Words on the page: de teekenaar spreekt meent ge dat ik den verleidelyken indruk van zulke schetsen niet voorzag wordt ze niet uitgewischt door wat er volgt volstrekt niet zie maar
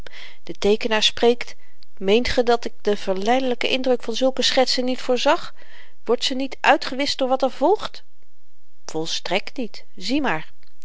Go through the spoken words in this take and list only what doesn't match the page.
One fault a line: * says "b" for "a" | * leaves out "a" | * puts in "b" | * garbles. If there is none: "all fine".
all fine